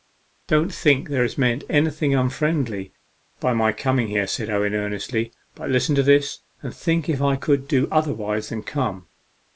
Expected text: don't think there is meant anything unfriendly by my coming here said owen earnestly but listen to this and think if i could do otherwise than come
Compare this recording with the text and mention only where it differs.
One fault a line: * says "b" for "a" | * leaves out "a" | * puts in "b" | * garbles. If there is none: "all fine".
all fine